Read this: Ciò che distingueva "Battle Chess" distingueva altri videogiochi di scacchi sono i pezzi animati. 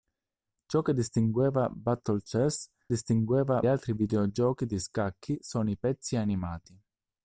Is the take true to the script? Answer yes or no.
yes